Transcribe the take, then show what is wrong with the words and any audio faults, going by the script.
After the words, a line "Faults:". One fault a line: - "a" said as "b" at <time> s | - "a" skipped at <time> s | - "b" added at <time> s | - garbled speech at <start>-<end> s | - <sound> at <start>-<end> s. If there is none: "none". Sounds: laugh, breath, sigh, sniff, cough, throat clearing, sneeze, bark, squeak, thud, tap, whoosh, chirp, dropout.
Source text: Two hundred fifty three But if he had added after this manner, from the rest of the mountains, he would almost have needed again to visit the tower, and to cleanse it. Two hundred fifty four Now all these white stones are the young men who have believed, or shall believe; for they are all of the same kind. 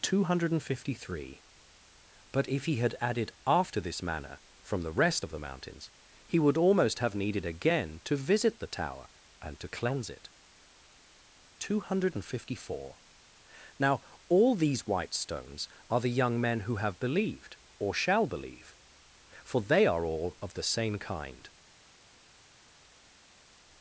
Two hundred fifty three But if he had added after this manner, from the rest of the mountains, he would almost have needed again to visit the tower, and to cleanse it. Two hundred fifty four Now all these white stones are the young men who have believed, or shall believe; for they are all of the same kind.
Faults:
none